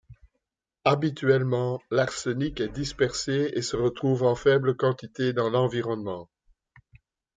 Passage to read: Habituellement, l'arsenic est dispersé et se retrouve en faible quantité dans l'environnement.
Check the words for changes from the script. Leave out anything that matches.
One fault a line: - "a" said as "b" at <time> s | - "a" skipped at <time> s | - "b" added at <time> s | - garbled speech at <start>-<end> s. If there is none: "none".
none